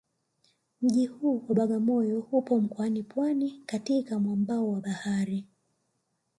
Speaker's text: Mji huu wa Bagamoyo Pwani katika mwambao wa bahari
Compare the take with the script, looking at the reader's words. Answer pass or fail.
fail